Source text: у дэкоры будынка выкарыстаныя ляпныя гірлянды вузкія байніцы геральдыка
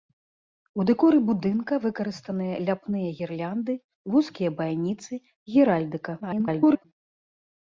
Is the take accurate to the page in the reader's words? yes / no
no